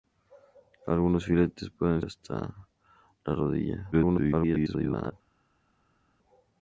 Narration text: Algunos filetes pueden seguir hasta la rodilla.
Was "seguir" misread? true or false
true